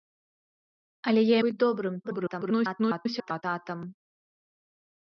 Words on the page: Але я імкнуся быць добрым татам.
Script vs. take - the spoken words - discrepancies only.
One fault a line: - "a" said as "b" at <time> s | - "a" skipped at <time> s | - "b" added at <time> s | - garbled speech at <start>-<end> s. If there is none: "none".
- "імкнуся" skipped at 1.4 s
- garbled speech at 2.0-3.4 s